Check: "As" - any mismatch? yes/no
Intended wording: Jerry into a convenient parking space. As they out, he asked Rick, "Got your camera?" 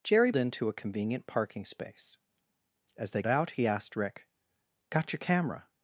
no